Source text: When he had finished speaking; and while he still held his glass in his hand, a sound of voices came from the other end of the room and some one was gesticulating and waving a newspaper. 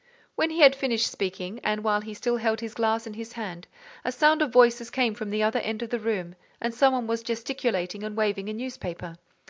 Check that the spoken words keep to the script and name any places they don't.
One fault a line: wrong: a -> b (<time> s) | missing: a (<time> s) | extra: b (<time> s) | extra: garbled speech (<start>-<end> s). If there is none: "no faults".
no faults